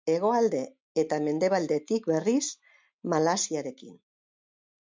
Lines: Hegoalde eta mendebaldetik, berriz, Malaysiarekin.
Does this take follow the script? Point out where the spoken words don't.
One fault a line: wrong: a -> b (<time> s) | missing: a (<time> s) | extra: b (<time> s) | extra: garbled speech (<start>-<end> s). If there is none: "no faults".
no faults